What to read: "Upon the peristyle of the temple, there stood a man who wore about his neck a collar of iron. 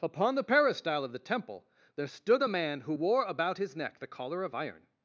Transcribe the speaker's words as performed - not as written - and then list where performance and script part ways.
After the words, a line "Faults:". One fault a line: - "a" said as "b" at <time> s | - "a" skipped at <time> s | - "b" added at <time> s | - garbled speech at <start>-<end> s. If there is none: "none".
"Upon the peristyle of the temple, there stood a man who wore about his neck the collar of iron.
Faults:
- "a" said as "the" at 4.0 s